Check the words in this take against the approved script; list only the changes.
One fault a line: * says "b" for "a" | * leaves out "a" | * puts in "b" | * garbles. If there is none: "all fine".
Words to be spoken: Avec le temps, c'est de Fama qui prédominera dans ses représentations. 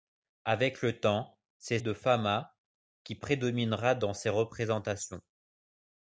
all fine